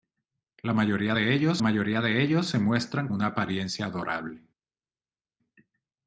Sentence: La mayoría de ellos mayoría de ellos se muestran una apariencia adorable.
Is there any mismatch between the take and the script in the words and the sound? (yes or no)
no